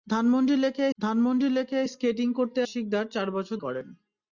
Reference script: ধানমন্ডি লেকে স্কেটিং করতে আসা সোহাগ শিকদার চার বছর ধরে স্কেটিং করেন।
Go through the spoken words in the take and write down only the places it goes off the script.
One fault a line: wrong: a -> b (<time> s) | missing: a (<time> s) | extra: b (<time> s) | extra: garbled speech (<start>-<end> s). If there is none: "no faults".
extra: ধানমন্ডি লেকে (1.0 s)
missing: আসা সোহাগ (2.6 s)
missing: ধরে স্কেটিং (3.6 s)